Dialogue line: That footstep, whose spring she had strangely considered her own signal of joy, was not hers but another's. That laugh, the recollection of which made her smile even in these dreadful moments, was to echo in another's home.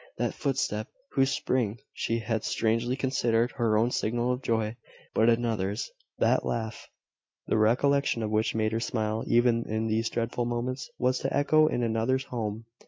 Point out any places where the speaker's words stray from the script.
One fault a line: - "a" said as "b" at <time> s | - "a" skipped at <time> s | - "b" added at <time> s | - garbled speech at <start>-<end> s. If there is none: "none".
- "was not hers" skipped at 4.8 s